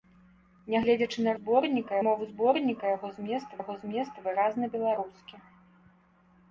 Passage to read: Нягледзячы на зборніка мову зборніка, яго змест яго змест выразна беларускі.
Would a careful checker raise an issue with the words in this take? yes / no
no